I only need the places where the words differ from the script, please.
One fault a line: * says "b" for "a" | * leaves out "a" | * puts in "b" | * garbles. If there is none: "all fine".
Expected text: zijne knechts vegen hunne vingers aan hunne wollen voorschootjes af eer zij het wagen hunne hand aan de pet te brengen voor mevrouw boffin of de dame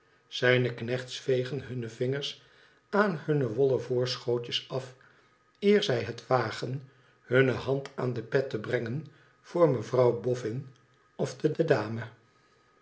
* puts in "de"